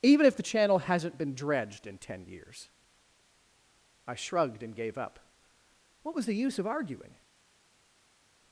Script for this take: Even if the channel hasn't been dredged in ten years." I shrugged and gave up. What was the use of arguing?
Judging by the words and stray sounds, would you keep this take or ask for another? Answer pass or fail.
pass